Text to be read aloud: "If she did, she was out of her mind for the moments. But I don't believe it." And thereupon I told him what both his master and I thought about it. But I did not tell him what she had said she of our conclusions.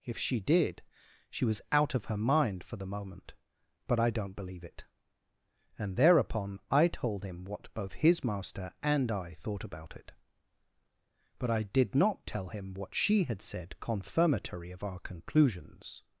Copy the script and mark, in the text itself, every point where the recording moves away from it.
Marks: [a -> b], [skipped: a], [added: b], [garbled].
"If she did, she was out of her mind for the [moments. -> moment] But I don't believe it." And thereupon I told him what both his master and I thought about it. But I did not tell him what she had said [she -> confirmatory] of our conclusions.